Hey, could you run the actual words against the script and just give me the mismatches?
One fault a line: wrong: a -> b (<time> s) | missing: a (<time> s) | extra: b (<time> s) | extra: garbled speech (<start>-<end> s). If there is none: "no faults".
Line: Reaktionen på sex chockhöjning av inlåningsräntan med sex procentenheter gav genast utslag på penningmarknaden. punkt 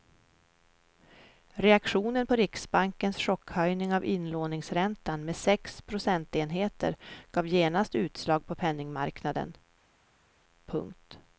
wrong: sex -> riksbankens (2.4 s)